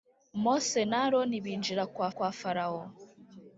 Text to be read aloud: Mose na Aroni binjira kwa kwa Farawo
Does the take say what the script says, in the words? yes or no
yes